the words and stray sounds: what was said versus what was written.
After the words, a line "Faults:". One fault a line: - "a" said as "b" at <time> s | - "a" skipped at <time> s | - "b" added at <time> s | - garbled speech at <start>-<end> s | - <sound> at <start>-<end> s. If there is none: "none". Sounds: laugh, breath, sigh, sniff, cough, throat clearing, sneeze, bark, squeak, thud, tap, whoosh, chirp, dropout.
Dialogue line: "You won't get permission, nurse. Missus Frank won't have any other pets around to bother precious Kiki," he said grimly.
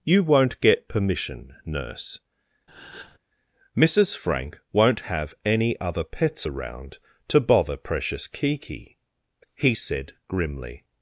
"You won't get permission, nurse. Missus Frank won't have any other pets around to bother precious Kiki," he said grimly.
Faults:
- breath at 2.7-3.2 s